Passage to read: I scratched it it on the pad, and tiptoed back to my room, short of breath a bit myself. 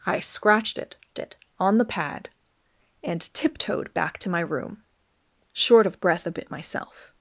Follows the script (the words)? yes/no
yes